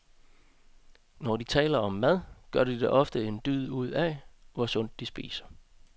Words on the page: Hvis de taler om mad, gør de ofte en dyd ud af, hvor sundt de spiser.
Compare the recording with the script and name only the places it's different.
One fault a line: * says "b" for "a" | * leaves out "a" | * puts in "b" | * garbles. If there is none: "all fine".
* says "Når" for "Hvis"